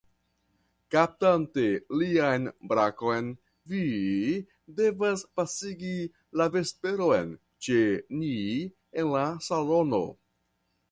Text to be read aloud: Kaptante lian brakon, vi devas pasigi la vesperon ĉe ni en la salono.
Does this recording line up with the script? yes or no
yes